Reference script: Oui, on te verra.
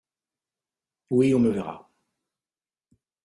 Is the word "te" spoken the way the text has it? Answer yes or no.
no